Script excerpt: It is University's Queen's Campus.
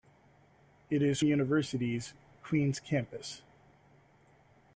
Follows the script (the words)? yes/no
yes